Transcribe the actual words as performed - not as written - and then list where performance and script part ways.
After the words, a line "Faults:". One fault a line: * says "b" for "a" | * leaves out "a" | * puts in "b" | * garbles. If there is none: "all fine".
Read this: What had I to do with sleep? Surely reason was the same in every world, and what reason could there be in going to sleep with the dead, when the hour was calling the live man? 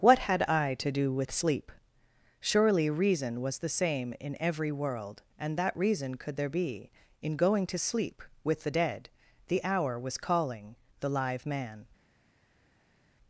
What had I to do with sleep? Surely reason was the same in every world, and that reason could there be in going to sleep with the dead, the hour was calling the live man?
Faults:
* says "that" for "what"
* leaves out "when"